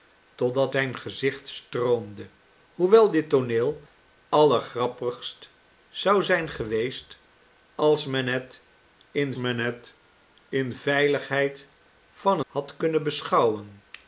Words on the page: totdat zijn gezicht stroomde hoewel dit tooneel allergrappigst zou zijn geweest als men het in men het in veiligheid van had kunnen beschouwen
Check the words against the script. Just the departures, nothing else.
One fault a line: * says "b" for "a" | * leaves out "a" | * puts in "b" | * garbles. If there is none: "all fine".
all fine